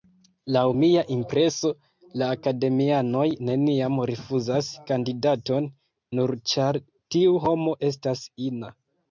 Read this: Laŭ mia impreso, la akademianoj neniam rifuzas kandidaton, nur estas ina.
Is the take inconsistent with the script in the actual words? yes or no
yes